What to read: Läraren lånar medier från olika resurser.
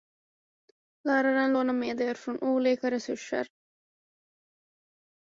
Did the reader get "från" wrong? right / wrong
right